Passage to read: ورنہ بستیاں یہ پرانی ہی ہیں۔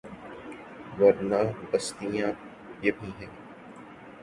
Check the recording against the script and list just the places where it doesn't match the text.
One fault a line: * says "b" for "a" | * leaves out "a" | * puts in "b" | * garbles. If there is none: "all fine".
* leaves out "پرانی"